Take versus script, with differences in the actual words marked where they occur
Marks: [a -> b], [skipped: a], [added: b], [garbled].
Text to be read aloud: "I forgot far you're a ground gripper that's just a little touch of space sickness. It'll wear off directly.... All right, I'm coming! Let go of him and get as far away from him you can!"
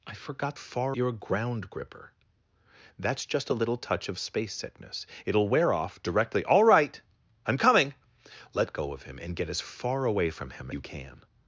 "I forgot far you're a ground gripper that's just a little touch of space sickness. It'll wear off directly.... All right, I'm coming! Let go of him and get as far away from him you can!"